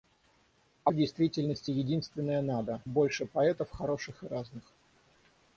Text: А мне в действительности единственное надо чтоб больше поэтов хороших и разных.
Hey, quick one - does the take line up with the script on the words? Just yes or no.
no